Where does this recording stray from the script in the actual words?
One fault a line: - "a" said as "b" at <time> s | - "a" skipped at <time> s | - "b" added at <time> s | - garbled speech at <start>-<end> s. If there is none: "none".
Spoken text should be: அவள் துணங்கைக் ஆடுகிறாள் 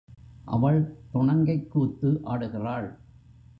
- "கூத்து" added at 1.7 s